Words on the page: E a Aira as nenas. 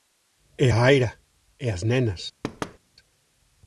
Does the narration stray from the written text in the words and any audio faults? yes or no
yes